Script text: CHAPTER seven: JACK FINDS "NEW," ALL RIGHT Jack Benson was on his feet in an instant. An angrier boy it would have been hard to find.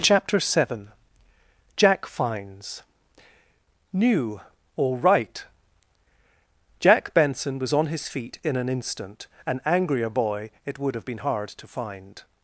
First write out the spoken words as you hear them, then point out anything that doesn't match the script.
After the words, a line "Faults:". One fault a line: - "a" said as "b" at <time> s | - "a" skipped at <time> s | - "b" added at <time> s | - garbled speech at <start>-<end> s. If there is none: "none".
CHAPTER seven: JACK FINDS "NEW," ALL RIGHT Jack Benson was on his feet in an instant. An angrier boy it would have been hard to find.
Faults:
none